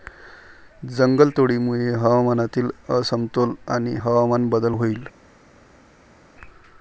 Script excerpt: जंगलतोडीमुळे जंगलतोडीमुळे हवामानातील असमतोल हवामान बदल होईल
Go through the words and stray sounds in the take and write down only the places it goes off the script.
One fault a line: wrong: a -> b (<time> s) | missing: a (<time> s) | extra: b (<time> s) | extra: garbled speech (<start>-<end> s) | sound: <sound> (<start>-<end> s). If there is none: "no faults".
missing: जंगलतोडीमुळे (1.9 s)
extra: आणि (3.7 s)